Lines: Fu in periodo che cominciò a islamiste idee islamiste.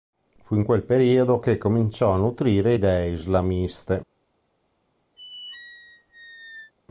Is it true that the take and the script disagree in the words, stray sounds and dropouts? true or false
true